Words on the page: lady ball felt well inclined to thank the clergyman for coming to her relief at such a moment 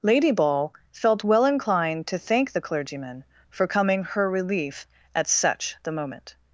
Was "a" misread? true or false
true